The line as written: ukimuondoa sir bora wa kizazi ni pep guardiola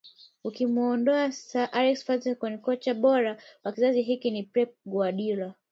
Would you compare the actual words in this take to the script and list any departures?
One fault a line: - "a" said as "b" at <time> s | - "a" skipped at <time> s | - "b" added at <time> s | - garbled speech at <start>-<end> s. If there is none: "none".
- "alex ferguson kocha" added at 1.7 s
- "hiki" added at 4.0 s